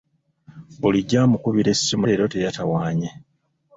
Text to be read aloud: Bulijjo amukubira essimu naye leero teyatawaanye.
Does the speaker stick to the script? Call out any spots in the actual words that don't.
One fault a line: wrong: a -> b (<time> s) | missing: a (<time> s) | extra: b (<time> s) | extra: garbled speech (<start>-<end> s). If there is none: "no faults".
missing: naye (2.0 s)